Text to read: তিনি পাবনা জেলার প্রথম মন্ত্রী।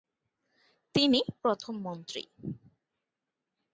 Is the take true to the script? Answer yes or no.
no